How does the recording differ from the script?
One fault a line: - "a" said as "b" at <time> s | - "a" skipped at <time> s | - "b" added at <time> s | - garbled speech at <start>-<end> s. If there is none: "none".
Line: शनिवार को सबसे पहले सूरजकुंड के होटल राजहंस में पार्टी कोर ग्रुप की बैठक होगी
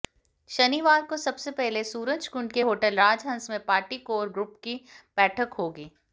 none